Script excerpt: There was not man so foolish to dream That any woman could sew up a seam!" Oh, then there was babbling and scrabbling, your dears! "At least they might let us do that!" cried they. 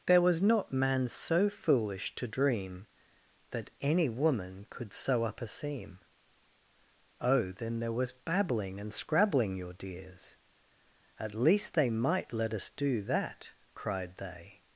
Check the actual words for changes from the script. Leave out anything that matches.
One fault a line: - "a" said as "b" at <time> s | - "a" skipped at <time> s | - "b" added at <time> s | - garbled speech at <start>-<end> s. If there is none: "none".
none